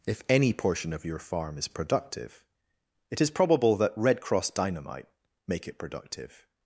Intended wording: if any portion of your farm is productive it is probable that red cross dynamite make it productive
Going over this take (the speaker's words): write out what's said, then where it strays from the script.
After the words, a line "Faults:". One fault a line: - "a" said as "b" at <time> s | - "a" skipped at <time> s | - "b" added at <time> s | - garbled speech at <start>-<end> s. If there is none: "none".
if any portion of your farm is productive it is probable that red cross dynamite make it productive
Faults:
none